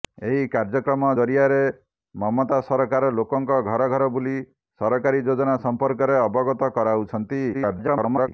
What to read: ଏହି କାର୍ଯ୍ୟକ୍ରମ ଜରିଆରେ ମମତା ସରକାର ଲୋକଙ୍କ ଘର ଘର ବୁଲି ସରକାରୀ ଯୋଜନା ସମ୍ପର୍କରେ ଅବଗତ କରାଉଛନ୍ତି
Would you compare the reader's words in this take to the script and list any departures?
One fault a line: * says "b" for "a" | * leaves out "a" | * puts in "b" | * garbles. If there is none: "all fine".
* garbles